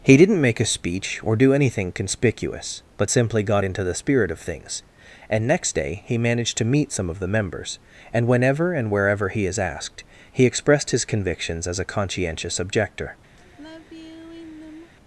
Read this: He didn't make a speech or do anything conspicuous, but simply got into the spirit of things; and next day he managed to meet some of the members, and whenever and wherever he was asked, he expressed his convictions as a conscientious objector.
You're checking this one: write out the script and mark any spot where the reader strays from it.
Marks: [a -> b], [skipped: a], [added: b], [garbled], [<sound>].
He didn't make a speech or do anything conspicuous, but simply got into the spirit of things; and next day he managed to meet some of the members, and whenever and wherever he [was -> is] asked, he expressed his convictions as a conscientious objector. [sigh]